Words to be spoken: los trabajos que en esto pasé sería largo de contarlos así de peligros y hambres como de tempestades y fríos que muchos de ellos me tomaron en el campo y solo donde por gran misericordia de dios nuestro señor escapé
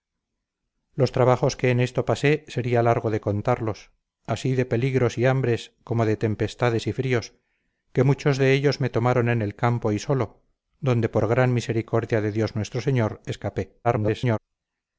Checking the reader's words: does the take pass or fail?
fail